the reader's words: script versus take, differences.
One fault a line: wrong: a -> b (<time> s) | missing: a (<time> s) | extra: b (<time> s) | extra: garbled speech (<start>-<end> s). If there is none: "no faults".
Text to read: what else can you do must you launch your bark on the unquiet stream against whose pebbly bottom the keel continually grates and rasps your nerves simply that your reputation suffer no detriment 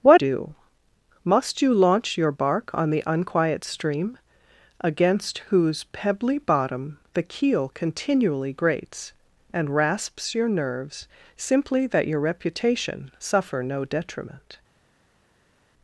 missing: else can you (0.2 s)